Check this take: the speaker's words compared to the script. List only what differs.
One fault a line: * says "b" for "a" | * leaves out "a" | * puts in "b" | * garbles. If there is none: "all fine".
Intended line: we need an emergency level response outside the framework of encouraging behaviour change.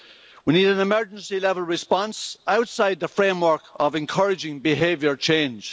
all fine